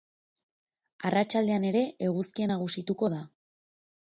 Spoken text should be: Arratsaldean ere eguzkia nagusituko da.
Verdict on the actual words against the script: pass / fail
pass